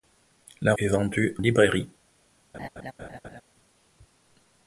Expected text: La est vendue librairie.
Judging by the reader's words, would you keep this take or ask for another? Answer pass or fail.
pass